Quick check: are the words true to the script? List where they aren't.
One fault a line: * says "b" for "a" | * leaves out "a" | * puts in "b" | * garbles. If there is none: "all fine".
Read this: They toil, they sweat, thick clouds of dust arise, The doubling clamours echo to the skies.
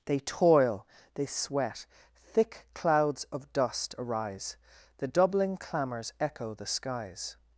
* leaves out "to"